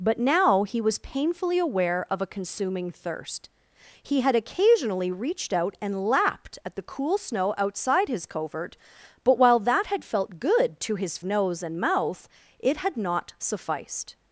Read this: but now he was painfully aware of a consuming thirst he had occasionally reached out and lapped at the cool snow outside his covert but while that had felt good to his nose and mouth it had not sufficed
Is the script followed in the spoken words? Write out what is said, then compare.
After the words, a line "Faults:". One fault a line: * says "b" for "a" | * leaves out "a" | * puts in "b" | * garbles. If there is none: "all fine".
but now he was painfully aware of a consuming thirst he had occasionally reached out and lapped at the cool snow outside his covert but while that had felt good to his nose and mouth it had not sufficed
Faults:
all fine